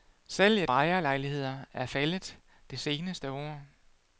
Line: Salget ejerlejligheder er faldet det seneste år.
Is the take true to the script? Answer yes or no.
yes